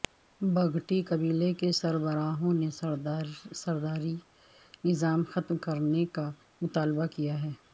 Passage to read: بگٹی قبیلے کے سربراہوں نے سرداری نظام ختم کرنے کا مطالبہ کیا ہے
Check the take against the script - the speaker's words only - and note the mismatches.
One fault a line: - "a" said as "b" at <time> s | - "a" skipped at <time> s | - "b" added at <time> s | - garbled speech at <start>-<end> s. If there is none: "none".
none